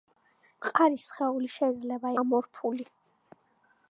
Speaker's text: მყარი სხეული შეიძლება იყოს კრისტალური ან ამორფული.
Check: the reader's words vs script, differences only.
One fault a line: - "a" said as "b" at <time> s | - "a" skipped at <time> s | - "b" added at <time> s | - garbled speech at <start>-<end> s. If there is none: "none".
- "იყოს კრისტალური ან" skipped at 2.1 s